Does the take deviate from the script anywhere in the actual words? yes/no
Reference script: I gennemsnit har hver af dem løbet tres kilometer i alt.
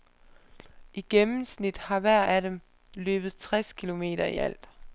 no